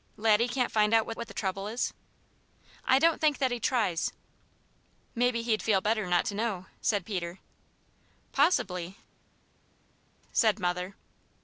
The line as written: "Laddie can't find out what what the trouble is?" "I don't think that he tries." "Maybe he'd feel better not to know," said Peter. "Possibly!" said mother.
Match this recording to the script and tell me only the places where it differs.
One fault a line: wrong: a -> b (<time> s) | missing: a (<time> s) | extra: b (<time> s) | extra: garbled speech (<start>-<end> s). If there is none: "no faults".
no faults